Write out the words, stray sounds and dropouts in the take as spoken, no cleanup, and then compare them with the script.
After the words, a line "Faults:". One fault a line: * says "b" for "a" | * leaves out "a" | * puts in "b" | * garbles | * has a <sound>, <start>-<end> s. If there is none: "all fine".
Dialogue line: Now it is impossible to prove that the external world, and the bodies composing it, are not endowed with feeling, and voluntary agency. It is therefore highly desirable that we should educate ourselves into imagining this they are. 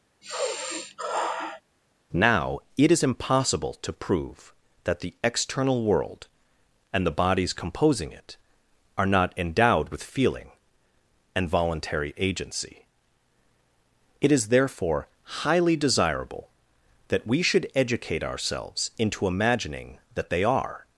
Now it is impossible to prove that the external world, and the bodies composing it, are not endowed with feeling, and voluntary agency. It is therefore highly desirable that we should educate ourselves into imagining that they are.
Faults:
* has a sigh, 0.2-1.6 s
* says "that" for "this"